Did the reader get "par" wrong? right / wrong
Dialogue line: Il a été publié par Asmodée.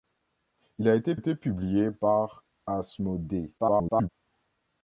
right